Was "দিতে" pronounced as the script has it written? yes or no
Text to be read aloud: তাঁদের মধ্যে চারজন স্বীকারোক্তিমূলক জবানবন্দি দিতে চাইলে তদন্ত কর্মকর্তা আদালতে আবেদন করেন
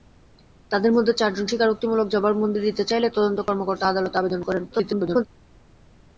yes